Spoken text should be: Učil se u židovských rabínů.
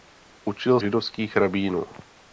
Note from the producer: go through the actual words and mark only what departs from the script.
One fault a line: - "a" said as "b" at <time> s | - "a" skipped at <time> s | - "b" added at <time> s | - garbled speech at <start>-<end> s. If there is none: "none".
- "se u" skipped at 0.8 s